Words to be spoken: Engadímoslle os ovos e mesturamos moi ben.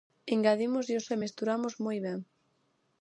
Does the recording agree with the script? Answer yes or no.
no